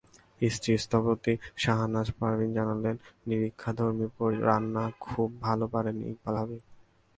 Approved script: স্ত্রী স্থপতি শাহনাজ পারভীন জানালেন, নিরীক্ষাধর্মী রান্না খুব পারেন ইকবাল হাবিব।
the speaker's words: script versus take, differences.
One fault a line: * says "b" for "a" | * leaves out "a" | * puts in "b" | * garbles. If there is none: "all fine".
* puts in "ভালো"